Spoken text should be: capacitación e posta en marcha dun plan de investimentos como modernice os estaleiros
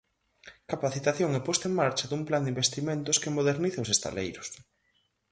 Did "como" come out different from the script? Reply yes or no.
yes